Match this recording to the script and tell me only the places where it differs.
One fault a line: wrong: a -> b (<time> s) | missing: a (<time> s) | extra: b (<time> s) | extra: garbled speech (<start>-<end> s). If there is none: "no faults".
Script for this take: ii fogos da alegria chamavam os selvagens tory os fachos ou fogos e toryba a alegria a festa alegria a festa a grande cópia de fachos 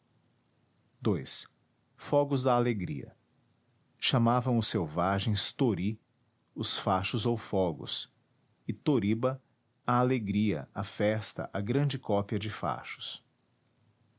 missing: alegria a festa (11.5 s)